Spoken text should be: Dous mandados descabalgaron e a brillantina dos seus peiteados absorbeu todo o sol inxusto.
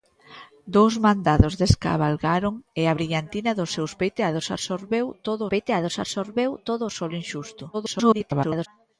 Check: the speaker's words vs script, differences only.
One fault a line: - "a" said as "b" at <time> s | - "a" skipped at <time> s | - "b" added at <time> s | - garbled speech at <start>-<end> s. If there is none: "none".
- "peiteados absorbeu todo" added at 5.5 s
- garbled speech at 7.7-8.7 s